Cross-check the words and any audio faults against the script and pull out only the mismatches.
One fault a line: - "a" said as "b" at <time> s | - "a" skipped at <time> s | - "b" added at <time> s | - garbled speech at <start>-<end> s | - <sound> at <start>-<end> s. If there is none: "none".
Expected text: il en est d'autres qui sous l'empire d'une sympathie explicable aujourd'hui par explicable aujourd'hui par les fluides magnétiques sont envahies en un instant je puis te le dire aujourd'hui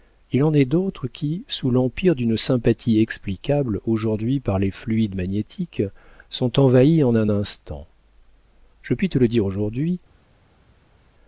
- "explicable aujourd'hui par" skipped at 4.6 s